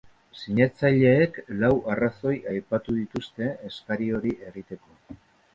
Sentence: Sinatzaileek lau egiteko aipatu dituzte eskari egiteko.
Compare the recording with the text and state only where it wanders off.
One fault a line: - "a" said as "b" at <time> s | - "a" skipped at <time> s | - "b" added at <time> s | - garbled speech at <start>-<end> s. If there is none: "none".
- "egiteko" said as "arrazoi" at 1.9 s
- "hori" added at 4.2 s